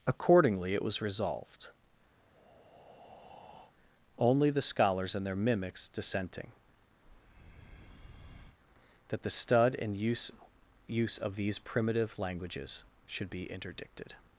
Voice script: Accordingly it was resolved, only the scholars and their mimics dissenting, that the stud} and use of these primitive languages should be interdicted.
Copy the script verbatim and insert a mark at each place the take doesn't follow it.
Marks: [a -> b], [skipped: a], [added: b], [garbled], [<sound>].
Accordingly it was resolved, [breath] only the scholars and their mimics dissenting, [breath] that the stud} and use [added: use] of these primitive languages should be interdicted.